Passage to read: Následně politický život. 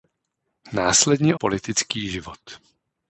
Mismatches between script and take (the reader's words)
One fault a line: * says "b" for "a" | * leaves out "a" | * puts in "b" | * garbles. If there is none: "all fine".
all fine